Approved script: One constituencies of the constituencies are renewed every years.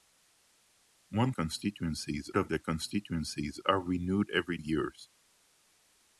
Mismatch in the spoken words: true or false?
false